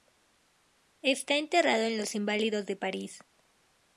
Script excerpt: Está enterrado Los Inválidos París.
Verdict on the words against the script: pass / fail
fail